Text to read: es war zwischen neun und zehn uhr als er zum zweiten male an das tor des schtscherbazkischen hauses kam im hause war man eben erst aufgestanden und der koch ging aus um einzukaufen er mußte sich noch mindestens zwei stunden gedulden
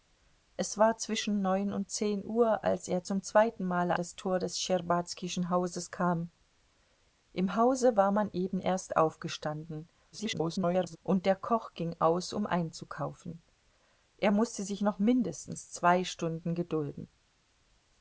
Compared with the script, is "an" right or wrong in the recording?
wrong